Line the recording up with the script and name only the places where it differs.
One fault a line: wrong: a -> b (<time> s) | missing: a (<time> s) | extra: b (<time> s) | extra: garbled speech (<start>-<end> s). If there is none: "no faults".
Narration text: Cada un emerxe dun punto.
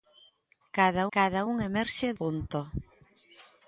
extra: cada (1.2 s)
missing: dun (2.1 s)